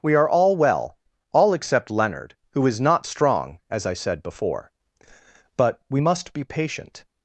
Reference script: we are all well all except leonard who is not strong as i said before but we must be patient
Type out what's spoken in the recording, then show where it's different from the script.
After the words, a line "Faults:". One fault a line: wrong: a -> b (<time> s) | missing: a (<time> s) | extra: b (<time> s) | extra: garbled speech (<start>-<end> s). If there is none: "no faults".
we are all well all except leonard who is not strong as i said before but we must be patient
Faults:
no faults